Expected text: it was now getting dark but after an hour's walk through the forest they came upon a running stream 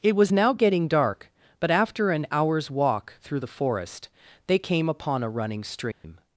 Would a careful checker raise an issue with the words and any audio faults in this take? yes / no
yes